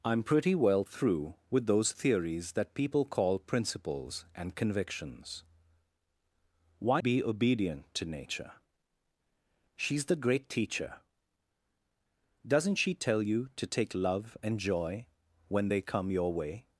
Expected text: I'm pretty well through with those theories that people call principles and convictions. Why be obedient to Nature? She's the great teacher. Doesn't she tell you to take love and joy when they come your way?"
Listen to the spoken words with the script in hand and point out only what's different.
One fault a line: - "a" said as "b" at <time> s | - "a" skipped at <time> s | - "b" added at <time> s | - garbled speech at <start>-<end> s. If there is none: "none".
none